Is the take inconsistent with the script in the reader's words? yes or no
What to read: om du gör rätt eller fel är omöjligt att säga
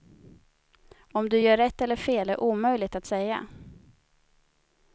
no